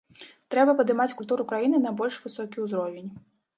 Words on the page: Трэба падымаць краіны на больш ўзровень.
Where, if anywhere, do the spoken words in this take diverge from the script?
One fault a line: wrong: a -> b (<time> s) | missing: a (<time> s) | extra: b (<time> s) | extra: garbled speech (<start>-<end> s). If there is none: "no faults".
extra: культуру (1.2 s)
extra: высокі (2.3 s)